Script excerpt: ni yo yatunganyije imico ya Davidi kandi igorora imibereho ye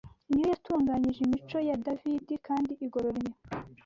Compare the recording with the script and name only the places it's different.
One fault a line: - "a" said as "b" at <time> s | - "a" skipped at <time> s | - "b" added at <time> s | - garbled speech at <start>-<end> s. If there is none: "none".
- "imibereho" skipped at 3.2 s